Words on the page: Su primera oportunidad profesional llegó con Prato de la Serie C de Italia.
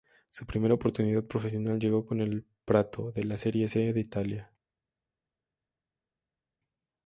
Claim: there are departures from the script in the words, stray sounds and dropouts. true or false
true